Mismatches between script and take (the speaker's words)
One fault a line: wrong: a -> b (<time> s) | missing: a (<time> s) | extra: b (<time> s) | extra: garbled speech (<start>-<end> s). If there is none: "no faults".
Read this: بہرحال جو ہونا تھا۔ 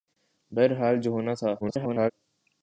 extra: garbled speech (1.6-2.1 s)